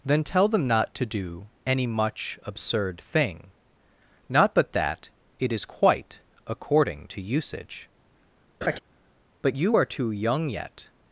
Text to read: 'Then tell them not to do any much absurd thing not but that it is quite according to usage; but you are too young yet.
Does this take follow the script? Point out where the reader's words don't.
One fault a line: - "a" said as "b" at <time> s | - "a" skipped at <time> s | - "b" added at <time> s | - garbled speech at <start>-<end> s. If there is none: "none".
none